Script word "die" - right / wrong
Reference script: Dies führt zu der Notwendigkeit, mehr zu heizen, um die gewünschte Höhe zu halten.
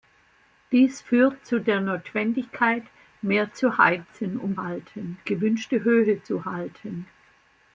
wrong